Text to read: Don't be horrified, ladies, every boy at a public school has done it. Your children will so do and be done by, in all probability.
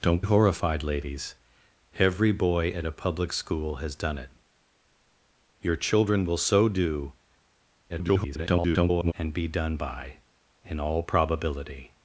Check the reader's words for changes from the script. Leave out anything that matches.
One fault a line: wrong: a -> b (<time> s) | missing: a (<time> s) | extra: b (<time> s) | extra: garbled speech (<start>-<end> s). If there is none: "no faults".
missing: be (0.2 s)
extra: garbled speech (7.9-9.1 s)